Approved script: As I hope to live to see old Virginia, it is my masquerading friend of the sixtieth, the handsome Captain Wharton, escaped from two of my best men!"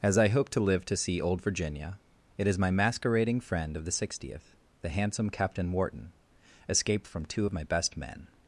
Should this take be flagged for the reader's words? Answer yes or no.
no